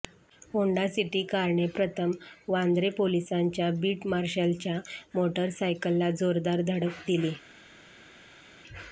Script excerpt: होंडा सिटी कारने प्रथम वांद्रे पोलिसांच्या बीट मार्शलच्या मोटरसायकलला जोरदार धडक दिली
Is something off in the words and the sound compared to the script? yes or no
no